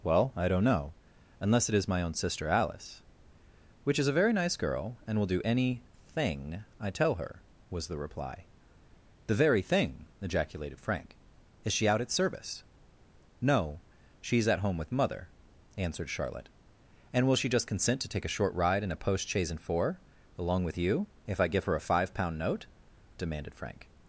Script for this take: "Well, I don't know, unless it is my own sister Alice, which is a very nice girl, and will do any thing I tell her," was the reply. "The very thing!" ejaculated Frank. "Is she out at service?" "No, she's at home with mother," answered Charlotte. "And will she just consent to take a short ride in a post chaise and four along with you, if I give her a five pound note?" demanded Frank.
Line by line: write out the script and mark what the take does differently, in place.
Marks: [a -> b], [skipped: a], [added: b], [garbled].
"Well, I don't know, unless it is my own sister Alice, which is a very nice girl, and will do any thing I tell her," was the reply. "The very thing!" ejaculated Frank. "Is she out at service?" "No, she's at home with mother," answered Charlotte. "And will she just consent to take a short ride in a post chaise and four along with you, if I give her a five pound note?" demanded Frank.